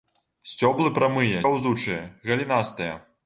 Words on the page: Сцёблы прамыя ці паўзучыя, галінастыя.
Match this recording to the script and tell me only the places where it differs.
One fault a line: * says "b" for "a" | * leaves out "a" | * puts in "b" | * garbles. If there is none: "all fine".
* leaves out "ці"